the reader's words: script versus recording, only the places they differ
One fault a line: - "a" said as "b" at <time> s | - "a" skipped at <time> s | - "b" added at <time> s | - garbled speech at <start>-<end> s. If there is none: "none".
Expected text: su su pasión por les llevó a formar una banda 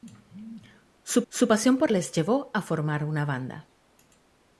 none